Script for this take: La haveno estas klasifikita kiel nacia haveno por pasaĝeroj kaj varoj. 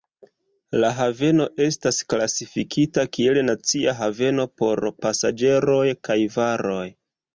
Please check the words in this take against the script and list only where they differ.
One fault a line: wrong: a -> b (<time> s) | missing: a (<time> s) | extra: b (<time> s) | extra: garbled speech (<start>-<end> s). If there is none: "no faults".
no faults